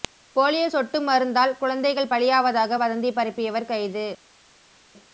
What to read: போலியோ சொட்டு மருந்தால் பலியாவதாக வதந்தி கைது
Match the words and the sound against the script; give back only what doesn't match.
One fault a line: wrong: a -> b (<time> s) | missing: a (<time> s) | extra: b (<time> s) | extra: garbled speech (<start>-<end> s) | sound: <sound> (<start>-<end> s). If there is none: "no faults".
extra: குழந்தைகள் (1.6 s)
extra: பரப்பியவர் (3.2 s)